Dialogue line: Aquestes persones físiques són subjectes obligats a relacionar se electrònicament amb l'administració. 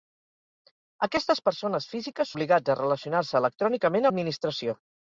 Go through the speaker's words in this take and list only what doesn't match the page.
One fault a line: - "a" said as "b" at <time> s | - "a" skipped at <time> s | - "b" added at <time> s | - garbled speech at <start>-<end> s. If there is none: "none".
- "són subjectes" skipped at 2.3 s
- "amb" skipped at 4.1 s